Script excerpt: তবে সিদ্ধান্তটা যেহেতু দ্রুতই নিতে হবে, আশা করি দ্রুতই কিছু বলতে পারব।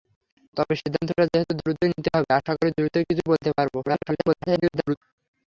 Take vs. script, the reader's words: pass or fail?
fail